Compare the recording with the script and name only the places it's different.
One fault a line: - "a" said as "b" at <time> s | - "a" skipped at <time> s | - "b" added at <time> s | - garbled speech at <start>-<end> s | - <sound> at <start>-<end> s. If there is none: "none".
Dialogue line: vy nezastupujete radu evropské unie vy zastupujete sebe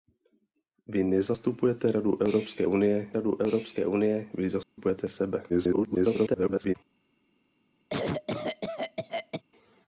- "radu evropské unie" added at 3.1 s
- dropout at 4.6-4.8 s
- garbled speech at 5.5-6.7 s
- cough at 7.9-9.4 s